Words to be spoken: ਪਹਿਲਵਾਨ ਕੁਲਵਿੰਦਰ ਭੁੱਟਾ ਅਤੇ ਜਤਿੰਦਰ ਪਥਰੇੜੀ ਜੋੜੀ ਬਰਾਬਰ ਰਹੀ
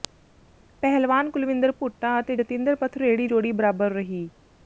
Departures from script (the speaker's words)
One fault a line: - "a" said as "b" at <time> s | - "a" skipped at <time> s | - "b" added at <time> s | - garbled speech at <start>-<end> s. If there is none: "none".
none